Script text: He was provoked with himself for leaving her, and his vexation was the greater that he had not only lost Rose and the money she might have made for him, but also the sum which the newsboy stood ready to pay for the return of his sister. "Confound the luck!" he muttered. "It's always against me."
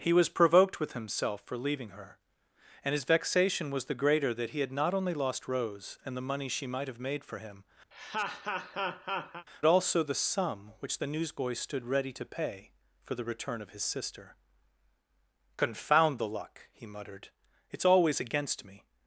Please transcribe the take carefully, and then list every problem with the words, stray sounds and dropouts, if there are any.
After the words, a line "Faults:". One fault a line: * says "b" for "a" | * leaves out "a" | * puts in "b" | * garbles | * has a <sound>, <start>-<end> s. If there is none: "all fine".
He was provoked with himself for leaving her, and his vexation was the greater that he had not only lost Rose and the money she might have made for him, also the sum which the newsboy stood ready to pay for the return of his sister. "Confound the luck!" he muttered. "It's always against me."
Faults:
* leaves out "but"
* has a laugh, 7.9-9.5 s